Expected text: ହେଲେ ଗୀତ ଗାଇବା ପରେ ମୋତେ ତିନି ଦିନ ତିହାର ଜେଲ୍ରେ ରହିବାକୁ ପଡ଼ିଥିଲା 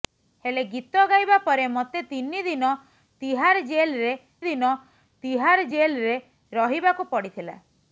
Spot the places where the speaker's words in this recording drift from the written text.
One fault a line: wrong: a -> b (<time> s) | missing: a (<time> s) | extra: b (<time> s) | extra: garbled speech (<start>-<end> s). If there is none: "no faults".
extra: ଦିନ ତିହାର ଜେଲ୍ରେ (4.5 s)